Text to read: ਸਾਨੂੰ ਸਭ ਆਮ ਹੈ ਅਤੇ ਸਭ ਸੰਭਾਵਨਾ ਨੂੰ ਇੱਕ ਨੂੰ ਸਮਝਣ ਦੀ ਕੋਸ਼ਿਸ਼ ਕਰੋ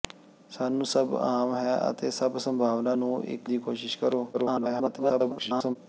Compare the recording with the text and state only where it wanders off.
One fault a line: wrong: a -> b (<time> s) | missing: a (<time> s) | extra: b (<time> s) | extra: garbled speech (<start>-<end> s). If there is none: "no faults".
missing: ਨੂੰ ਸਮਝਣ (3.5 s)
extra: garbled speech (4.3-5.8 s)